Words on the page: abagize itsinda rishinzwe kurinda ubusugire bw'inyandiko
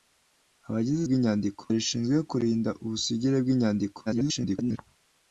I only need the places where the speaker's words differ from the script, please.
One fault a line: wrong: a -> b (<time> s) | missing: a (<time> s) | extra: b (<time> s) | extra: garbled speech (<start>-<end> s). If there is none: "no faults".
wrong: itsinda -> bw'inyandiko (1.1 s)
extra: garbled speech (4.1-4.8 s)